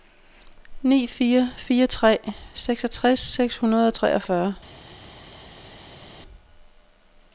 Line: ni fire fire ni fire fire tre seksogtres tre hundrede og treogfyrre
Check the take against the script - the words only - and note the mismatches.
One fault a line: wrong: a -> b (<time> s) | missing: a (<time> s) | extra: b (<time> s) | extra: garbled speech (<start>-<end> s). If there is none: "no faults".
missing: ni fire fire (1.9 s)
wrong: tre -> seks (3.2 s)